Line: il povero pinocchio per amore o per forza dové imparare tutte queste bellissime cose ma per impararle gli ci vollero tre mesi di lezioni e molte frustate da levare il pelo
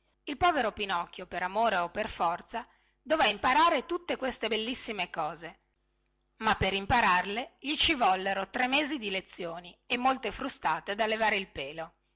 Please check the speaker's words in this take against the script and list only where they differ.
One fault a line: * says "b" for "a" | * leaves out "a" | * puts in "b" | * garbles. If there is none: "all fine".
all fine